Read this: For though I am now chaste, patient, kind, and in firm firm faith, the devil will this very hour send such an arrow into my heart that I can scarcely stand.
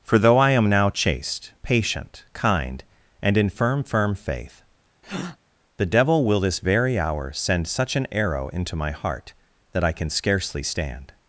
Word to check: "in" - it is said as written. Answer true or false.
true